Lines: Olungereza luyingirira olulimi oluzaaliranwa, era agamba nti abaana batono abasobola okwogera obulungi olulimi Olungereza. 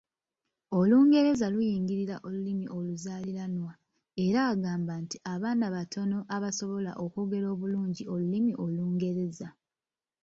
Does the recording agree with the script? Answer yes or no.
yes